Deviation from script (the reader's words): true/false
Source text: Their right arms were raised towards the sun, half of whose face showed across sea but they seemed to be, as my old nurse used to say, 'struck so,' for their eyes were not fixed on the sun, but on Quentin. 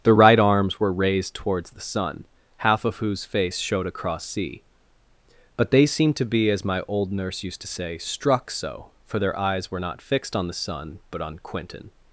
false